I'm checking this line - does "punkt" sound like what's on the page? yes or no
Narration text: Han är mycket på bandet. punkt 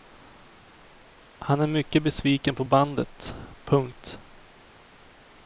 yes